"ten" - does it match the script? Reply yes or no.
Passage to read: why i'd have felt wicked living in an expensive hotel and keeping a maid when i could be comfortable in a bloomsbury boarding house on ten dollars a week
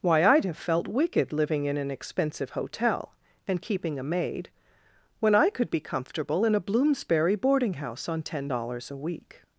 yes